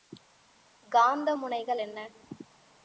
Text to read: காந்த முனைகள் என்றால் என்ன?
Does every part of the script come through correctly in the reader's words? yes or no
no